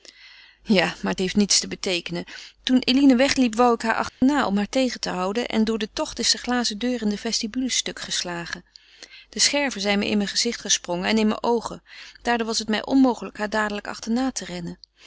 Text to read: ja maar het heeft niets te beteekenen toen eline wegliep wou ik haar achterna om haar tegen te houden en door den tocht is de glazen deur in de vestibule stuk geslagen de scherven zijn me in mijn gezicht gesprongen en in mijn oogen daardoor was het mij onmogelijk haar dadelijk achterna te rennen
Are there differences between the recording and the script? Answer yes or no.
no